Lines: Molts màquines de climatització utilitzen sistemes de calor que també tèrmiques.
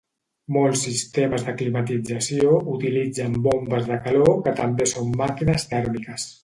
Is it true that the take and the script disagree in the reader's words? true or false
true